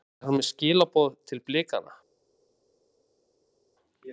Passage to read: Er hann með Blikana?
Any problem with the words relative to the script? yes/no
yes